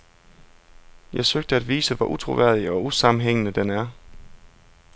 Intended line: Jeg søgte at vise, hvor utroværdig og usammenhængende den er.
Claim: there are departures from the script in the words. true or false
false